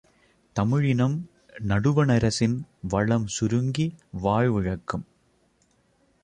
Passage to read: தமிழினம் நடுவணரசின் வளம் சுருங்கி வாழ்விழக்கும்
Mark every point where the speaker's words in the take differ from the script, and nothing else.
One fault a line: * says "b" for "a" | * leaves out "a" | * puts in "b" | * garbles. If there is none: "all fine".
all fine